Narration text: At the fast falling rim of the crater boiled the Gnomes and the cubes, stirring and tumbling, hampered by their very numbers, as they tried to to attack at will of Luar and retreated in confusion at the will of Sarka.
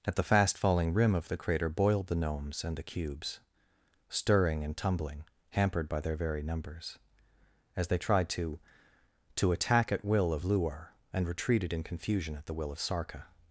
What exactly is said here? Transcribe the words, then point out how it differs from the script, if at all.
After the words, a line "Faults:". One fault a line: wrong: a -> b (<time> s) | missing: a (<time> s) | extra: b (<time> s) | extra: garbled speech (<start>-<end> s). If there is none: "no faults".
At the fast falling rim of the crater boiled the Gnomes and the cubes, stirring and tumbling, hampered by their very numbers, as they tried to to attack at will of Luar and retreated in confusion at the will of Sarka.
Faults:
no faults